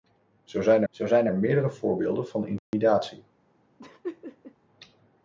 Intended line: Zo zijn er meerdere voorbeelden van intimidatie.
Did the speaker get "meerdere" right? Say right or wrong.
right